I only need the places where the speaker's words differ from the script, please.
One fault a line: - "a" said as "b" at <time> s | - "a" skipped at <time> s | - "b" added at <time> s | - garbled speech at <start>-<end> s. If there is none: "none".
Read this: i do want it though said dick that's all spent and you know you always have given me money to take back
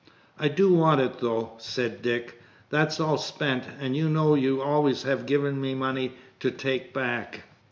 none